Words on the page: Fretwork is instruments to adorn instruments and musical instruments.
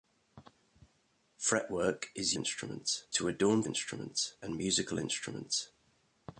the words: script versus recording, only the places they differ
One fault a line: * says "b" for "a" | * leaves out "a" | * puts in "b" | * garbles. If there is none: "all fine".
all fine